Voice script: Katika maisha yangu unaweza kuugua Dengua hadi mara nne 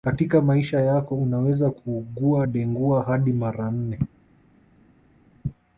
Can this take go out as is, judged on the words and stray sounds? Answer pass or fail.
fail